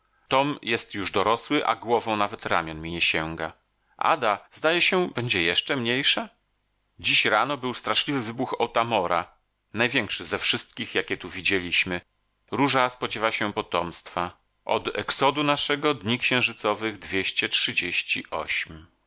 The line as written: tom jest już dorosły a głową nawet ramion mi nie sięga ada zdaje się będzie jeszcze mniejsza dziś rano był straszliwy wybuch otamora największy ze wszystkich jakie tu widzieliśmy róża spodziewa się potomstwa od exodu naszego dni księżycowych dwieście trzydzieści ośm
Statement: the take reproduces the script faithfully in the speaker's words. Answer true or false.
true